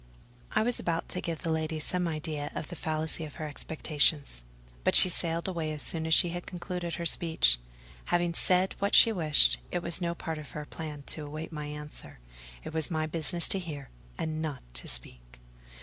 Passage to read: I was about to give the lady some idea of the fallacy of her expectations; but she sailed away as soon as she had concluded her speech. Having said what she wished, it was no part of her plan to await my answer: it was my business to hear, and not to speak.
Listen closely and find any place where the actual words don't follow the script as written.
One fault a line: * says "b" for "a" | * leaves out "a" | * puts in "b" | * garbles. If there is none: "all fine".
all fine